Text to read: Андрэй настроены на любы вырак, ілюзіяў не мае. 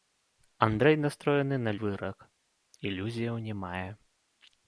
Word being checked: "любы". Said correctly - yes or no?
no